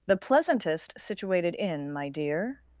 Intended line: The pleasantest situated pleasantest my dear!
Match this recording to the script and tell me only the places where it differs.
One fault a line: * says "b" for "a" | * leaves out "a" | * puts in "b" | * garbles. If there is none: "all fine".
* says "inn" for "pleasantest"